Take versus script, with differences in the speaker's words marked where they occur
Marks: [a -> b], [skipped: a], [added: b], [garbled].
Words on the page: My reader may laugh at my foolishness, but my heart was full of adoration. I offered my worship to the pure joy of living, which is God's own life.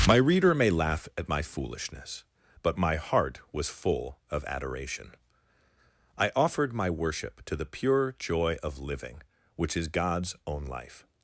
My reader may laugh at my foolishness, but my heart was full of adoration. I offered my worship to the pure joy of living, which is God's own life.